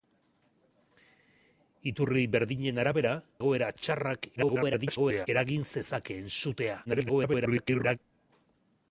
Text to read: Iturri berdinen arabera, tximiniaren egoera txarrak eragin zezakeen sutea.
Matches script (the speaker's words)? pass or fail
fail